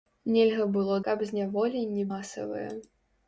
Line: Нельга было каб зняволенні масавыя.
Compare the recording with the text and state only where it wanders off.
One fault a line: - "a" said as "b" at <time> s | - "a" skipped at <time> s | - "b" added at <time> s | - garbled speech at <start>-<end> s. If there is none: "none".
none